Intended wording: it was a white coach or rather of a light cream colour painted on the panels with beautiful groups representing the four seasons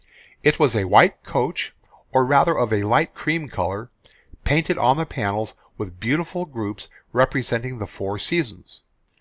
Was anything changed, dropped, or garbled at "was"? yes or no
no